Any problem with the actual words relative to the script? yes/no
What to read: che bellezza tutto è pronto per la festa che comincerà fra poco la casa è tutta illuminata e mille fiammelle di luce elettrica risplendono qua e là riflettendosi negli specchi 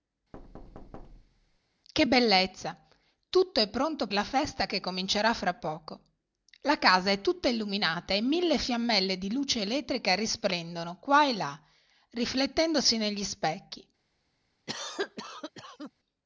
yes